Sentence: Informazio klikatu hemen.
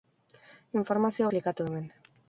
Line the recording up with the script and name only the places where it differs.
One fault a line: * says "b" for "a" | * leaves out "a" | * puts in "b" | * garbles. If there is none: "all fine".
all fine